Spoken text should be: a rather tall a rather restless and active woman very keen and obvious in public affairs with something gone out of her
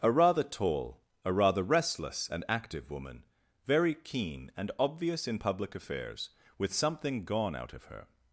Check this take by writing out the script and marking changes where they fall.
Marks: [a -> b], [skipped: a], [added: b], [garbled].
a rather tall a rather restless and active woman very keen and obvious in public affairs with something gone out of her